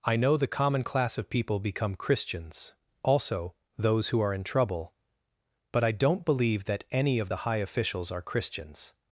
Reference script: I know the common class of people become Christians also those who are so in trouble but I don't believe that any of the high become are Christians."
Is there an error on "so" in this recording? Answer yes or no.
yes